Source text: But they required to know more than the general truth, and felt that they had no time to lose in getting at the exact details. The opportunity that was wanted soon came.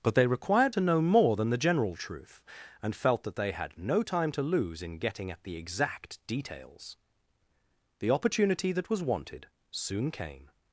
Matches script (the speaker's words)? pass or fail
pass